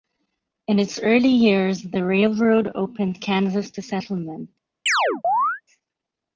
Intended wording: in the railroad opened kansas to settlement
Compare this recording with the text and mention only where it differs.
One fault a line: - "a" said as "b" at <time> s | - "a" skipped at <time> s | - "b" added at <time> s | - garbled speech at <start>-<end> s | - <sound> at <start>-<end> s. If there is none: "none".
- "its early years" added at 0.8 s
- chirp at 4.9-5.6 s